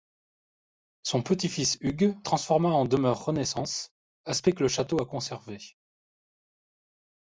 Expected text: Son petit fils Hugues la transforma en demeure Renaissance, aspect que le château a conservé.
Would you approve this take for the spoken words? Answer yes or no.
no